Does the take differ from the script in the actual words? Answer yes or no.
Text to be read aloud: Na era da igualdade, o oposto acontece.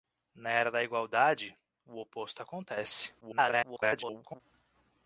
yes